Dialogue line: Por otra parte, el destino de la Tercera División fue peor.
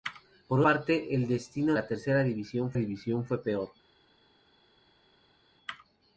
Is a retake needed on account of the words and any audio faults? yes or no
yes